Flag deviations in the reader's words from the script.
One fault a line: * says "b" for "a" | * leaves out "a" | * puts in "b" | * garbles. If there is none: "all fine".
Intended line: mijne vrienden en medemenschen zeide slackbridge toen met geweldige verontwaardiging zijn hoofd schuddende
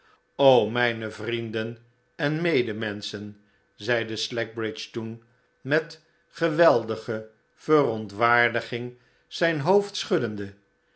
all fine